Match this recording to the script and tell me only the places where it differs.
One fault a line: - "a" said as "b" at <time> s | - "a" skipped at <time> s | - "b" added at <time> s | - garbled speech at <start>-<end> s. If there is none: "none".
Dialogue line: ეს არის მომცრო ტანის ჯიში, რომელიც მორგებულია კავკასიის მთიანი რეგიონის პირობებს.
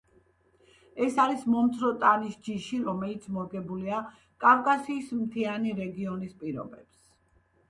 none